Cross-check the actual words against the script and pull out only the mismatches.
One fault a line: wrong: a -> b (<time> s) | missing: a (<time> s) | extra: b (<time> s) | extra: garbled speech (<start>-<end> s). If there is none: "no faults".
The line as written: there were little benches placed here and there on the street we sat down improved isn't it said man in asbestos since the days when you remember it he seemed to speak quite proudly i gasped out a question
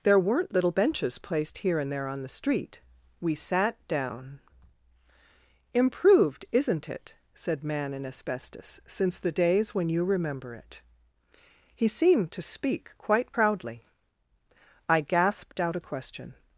wrong: were -> weren't (0.2 s)